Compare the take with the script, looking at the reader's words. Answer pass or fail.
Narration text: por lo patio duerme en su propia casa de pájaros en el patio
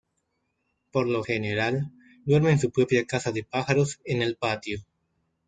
fail